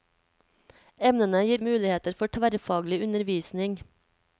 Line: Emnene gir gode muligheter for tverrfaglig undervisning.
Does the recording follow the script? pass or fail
fail